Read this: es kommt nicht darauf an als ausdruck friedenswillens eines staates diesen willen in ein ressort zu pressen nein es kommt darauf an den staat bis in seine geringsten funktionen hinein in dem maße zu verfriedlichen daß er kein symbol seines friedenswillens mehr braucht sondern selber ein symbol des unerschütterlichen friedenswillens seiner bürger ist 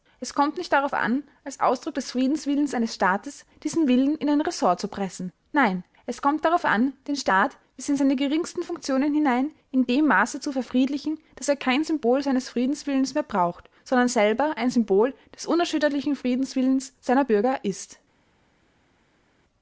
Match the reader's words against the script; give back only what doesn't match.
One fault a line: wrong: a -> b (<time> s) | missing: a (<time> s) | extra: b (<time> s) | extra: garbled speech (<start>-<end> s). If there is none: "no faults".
extra: des (1.9 s)